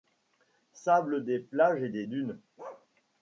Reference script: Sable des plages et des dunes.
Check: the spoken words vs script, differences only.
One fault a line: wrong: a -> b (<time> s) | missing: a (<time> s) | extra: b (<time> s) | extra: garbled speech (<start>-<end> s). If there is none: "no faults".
no faults